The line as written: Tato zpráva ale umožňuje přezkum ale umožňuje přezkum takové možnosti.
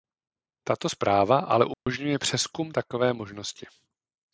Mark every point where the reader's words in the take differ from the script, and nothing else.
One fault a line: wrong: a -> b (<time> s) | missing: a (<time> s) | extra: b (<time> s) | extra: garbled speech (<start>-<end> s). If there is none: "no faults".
missing: ale umožňuje přezkum (2.7 s)